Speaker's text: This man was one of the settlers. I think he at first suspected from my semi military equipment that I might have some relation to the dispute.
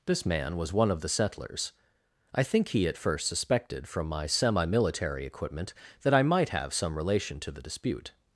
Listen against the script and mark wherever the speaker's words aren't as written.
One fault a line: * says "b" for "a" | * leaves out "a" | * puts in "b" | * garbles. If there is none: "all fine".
all fine